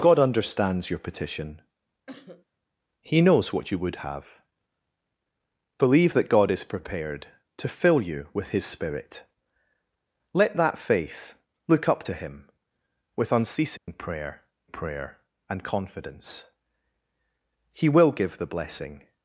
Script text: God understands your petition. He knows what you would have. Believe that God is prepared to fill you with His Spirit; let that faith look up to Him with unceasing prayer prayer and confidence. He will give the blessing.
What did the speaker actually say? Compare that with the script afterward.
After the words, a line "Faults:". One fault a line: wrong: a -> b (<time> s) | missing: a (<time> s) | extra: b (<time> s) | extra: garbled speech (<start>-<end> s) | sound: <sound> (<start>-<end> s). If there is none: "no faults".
God understands your petition. He knows what you would have. Believe that God is prepared to fill you with His Spirit; let that faith look up to Him with unceasing prayer prayer and confidence. He will give the blessing.
Faults:
sound: cough (2.1-2.4 s)
sound: dropout (13.8-13.9 s)